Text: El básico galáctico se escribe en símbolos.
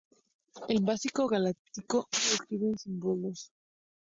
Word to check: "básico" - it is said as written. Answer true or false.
true